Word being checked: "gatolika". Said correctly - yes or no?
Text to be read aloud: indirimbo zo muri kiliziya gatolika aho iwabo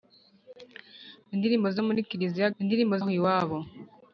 no